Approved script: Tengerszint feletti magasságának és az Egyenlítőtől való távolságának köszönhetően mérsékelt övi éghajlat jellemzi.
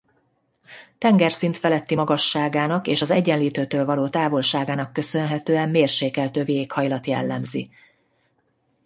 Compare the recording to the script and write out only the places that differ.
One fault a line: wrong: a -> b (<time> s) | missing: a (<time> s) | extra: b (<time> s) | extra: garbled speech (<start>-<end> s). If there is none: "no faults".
no faults